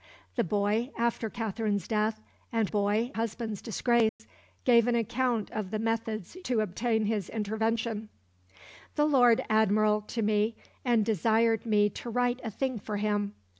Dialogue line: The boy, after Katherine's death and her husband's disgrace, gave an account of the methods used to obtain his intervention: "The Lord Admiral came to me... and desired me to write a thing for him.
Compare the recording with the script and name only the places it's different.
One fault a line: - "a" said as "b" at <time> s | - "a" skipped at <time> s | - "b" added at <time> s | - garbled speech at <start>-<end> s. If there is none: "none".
- "her" said as "boy" at 2.7 s
- "used" skipped at 6.4 s
- "came" skipped at 10.1 s